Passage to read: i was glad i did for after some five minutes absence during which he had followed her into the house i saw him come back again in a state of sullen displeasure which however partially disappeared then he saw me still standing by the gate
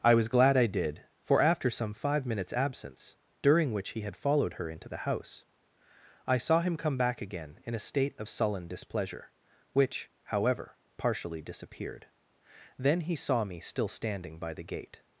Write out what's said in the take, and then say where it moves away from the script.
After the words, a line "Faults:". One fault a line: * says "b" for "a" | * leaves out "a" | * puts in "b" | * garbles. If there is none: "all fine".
i was glad i did for after some five minutes absence during which he had followed her into the house i saw him come back again in a state of sullen displeasure which however partially disappeared then he saw me still standing by the gate
Faults:
all fine